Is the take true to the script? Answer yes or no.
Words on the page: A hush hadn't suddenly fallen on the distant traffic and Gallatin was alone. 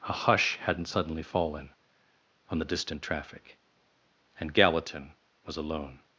yes